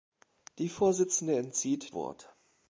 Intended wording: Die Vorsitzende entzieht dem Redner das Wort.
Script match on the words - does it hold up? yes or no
no